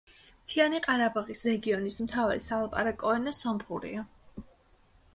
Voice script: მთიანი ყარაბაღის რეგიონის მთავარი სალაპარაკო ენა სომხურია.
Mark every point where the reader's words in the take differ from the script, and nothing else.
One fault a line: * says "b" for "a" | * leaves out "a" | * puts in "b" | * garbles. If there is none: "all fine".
all fine